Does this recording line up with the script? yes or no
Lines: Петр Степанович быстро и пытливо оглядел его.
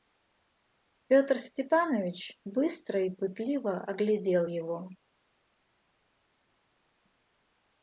yes